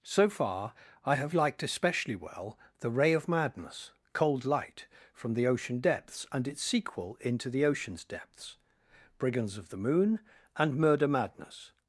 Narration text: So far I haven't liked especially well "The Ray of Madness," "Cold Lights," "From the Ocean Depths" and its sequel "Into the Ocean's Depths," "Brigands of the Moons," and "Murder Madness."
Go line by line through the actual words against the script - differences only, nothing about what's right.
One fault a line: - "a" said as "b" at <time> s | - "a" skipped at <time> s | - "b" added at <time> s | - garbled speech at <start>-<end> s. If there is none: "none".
- "haven't" said as "have" at 1.1 s
- "Lights" said as "Light" at 4.5 s
- "Moons" said as "Moon" at 9.8 s